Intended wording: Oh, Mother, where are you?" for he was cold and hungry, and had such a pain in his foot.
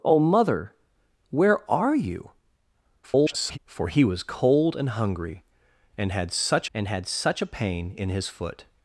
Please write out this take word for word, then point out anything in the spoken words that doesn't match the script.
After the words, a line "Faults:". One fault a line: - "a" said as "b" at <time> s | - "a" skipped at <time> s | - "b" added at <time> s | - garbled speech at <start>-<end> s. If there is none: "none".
Oh, Mother, where are you?" [garbled] for he was cold and hungry, and had such and had such a pain in his foot.
Faults:
- garbled speech at 3.0-3.6 s
- "and had such" added at 6.7 s